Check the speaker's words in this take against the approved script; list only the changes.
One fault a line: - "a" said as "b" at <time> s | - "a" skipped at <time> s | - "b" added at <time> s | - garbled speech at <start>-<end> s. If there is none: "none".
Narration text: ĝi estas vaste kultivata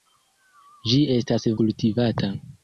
- "vaste" skipped at 1.4 s